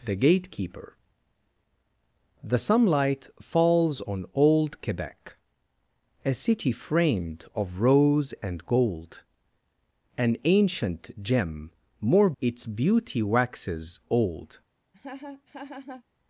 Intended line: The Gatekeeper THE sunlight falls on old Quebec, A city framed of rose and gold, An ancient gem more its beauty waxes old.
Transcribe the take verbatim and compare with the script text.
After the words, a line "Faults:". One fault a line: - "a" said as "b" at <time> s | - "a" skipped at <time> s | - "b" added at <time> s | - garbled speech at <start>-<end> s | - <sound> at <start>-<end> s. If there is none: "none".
The Gatekeeper THE sunlight falls on old Quebec, A city framed of rose and gold, An ancient gem more its beauty waxes old.
Faults:
- laugh at 14.9-16.0 s